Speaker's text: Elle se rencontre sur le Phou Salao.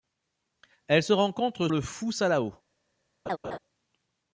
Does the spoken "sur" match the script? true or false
false